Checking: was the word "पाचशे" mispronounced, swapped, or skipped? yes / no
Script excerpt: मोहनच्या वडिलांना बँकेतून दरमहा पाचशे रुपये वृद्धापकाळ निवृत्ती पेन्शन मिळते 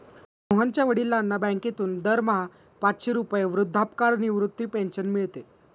no